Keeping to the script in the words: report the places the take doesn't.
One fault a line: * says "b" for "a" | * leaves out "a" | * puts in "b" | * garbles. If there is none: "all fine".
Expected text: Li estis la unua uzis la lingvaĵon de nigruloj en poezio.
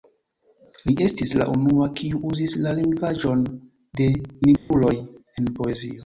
* puts in "kiu"